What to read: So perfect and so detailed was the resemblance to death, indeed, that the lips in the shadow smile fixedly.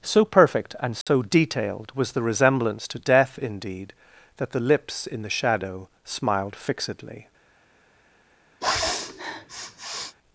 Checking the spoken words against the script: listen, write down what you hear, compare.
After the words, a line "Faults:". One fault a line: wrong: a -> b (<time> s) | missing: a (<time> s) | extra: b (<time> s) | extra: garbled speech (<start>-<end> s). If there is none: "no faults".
So perfect and so detailed was the resemblance to death, indeed, that the lips in the shadow smiled fixedly.
Faults:
wrong: smile -> smiled (6.0 s)